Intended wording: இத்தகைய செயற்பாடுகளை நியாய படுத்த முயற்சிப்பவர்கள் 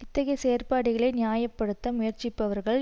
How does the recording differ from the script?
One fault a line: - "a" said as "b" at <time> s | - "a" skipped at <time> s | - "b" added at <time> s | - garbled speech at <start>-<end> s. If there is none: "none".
none